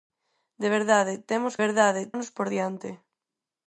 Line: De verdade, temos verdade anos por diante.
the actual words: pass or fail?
pass